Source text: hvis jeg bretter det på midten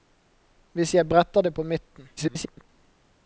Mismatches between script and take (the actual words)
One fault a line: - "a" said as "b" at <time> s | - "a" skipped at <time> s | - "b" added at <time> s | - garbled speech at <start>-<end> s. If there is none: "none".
- garbled speech at 2.2-2.7 s